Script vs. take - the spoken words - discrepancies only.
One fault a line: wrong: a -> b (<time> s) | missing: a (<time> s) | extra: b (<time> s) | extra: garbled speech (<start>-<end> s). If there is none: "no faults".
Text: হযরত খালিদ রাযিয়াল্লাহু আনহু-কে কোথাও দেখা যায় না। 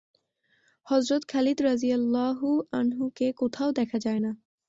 no faults